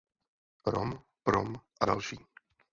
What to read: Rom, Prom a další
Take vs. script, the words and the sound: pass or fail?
pass